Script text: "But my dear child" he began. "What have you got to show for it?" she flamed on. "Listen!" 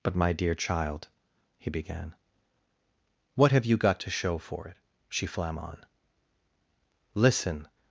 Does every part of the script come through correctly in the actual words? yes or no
no